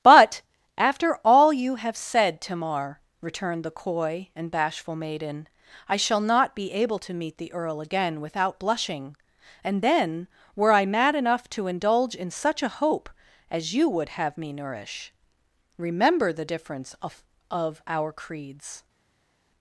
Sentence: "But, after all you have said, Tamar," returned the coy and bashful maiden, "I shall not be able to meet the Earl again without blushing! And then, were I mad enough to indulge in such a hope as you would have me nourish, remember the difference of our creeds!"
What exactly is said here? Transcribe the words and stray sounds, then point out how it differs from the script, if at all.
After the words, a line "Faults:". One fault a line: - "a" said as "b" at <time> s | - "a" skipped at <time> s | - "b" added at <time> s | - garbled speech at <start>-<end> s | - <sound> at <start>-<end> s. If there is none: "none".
"But, after all you have said, Tamar," returned the coy and bashful maiden, "I shall not be able to meet the Earl again without blushing! And then, were I mad enough to indulge in such a hope as you would have me nourish, remember the difference of of our creeds!"
Faults:
- "of" added at 17.5 s